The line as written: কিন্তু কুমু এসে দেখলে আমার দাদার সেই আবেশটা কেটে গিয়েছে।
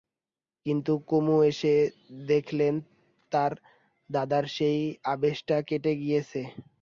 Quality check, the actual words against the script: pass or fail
fail